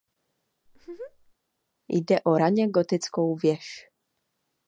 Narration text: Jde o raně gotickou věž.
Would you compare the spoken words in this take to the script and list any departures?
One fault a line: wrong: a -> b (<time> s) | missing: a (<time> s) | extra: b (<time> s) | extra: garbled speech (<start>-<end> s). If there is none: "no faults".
no faults